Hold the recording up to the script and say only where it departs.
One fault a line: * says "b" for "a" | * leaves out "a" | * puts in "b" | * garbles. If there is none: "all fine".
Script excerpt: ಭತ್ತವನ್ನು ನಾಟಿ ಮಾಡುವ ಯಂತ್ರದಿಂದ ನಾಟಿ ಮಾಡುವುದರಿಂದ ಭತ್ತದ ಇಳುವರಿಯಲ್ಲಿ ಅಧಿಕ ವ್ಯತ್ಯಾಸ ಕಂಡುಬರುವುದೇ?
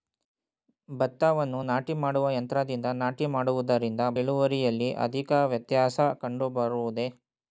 * leaves out "ಭತ್ತದ"